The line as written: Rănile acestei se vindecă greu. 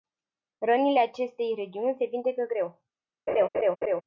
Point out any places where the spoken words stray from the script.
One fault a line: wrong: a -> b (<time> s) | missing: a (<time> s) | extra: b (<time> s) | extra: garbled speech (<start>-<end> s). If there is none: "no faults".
extra: regiuni (1.5 s)